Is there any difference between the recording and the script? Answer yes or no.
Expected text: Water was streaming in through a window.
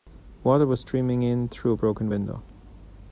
yes